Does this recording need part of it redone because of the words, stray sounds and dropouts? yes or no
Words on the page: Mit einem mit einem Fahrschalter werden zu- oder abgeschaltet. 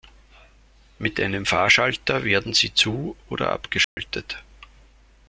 yes